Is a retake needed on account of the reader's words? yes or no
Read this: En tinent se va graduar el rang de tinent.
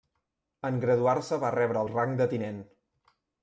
yes